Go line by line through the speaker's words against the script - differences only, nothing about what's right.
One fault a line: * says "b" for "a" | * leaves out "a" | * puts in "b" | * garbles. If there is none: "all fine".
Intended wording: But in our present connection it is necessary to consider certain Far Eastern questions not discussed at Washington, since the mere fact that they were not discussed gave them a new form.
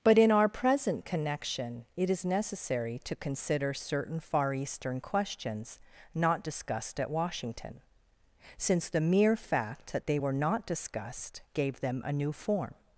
all fine